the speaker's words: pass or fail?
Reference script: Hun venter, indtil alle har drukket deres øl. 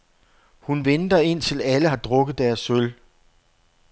pass